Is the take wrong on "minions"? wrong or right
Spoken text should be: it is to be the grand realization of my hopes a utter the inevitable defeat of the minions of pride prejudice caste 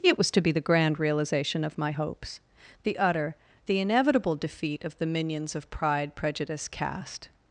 right